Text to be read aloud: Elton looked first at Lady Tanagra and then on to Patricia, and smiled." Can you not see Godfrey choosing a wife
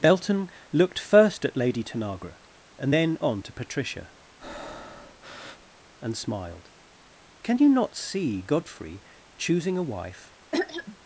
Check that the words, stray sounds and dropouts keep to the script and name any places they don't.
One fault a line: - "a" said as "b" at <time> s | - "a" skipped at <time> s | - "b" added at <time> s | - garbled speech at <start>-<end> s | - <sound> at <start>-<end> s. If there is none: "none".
- "Elton" said as "Belton" at 0.0 s
- breath at 4.4-5.8 s
- throat clearing at 10.5-11.0 s